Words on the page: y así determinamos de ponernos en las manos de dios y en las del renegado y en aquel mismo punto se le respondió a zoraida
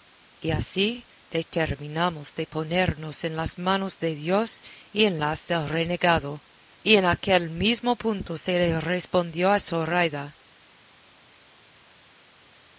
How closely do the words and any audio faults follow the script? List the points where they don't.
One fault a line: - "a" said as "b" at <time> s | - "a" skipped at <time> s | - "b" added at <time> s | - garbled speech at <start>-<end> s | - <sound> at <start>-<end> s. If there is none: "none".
none